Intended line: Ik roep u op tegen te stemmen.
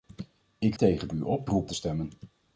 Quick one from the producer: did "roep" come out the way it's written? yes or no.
no